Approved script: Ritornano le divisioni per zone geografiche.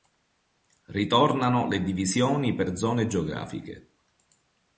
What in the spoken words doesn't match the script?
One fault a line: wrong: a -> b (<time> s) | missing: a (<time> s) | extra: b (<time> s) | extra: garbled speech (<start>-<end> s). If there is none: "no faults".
no faults